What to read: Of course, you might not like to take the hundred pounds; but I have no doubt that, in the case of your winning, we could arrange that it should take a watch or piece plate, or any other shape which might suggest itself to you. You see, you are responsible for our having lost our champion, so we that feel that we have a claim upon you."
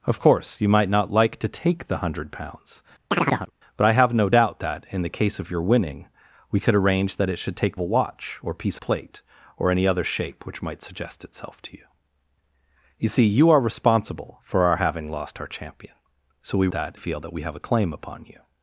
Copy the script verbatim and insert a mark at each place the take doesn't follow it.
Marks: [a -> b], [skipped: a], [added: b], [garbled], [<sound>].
Of course, you might not like to take the hundred pounds; [chirp] but I have no doubt that, in the case of your winning, we could arrange that it should take a watch or piece plate, or any other shape which might suggest itself to you. You see, you are responsible for our having lost our champion, so we that feel that we have a claim upon you."